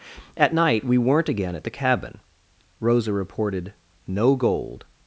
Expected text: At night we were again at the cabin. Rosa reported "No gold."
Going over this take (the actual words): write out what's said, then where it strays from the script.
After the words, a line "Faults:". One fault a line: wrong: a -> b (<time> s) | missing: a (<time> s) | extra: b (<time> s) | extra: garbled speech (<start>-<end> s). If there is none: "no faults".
At night we weren't again at the cabin. Rosa reported "No gold."
Faults:
wrong: were -> weren't (1.0 s)